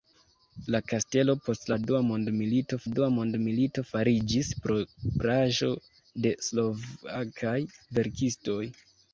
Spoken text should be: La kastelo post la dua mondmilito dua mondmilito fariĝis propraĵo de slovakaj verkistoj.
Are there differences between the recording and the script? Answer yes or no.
no